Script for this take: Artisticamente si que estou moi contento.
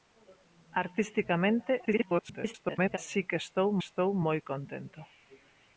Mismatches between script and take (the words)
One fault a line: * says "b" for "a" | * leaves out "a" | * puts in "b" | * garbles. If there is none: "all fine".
* garbles
* puts in "estou"